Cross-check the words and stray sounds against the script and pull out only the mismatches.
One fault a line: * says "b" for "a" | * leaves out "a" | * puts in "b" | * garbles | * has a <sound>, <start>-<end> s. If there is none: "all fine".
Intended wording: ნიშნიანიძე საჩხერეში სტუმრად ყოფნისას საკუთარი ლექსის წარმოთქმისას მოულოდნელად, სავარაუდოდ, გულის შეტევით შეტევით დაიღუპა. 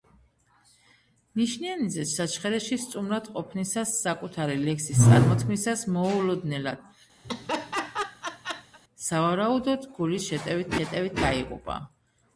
* has a laugh, 7.2-8.8 s